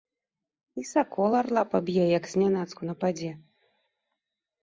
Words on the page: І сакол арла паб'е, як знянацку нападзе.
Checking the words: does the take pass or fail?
pass